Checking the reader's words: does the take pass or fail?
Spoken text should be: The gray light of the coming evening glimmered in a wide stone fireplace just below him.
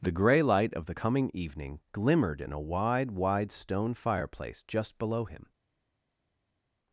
fail